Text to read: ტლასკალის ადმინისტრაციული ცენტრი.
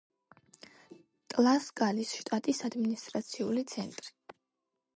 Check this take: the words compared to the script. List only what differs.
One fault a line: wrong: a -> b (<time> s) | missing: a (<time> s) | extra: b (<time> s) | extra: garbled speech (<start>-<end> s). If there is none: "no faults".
extra: შტატის (2.2 s)